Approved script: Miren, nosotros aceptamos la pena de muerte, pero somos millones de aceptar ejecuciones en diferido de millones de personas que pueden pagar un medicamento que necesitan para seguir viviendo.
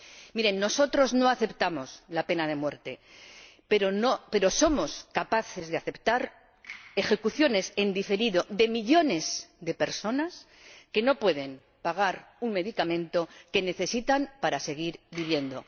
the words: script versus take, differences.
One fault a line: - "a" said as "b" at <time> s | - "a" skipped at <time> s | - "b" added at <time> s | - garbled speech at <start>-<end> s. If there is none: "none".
- "no" added at 1.1 s
- "millones" said as "capaces" at 5.1 s
- "no" added at 11.0 s